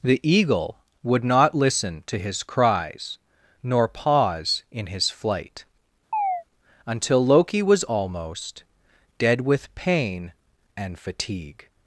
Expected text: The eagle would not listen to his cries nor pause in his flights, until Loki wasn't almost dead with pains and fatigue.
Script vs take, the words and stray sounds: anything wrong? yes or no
yes